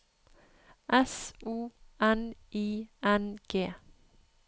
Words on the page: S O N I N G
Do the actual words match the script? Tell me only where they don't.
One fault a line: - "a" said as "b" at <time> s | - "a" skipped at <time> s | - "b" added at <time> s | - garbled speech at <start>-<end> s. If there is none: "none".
none